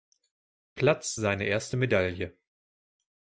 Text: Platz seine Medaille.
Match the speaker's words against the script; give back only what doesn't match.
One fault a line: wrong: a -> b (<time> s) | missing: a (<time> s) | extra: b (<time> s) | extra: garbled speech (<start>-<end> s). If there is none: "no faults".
extra: erste (1.5 s)